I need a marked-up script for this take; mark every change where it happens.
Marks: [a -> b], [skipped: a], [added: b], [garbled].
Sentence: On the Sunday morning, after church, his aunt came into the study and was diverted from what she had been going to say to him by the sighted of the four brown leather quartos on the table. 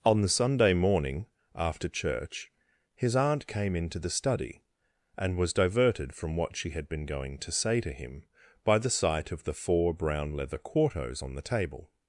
On the Sunday morning, after church, his aunt came into the study and was diverted from what she had been going to say to him by the [sighted -> sight] of the four brown leather quartos on the table.